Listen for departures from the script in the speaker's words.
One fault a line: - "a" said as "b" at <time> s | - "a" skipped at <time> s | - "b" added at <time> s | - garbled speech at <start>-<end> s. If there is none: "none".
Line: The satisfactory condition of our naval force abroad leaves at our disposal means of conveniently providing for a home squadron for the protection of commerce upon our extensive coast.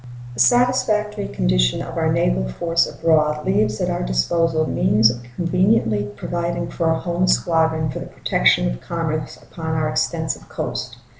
none